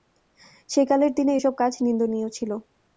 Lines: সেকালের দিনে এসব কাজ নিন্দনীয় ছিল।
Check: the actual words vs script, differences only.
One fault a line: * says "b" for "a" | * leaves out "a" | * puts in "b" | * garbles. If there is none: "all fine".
all fine